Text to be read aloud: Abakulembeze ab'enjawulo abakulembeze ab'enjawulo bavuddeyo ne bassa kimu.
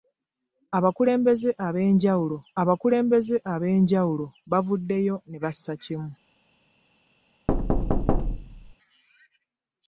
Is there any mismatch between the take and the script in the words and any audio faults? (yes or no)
yes